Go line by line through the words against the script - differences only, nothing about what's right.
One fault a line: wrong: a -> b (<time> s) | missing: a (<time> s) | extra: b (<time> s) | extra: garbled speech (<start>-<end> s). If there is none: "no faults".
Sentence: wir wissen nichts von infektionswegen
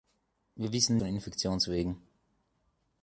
missing: nichts (1.0 s)